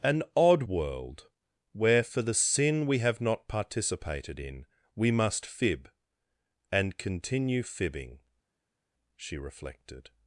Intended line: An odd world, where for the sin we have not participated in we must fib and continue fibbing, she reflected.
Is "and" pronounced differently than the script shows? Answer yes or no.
no